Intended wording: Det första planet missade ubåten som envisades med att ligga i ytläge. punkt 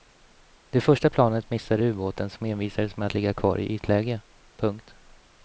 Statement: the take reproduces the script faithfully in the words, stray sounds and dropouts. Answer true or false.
false